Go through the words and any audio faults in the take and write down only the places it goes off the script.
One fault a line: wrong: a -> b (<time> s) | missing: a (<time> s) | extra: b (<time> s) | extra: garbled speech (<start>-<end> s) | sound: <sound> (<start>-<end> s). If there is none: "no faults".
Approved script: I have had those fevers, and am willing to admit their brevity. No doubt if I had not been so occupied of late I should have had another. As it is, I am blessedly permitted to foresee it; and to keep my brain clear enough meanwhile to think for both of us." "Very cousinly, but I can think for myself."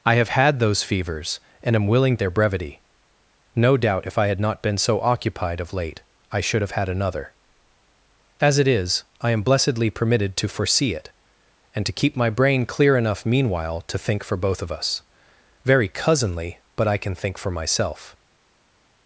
missing: to admit (2.2 s)